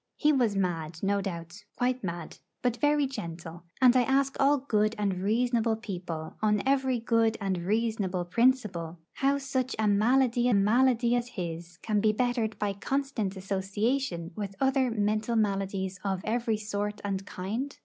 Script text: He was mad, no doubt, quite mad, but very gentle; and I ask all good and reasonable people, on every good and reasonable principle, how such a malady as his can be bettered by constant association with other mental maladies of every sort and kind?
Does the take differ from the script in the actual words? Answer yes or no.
yes